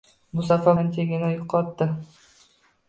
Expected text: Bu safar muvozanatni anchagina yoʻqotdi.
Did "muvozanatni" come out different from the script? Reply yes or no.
yes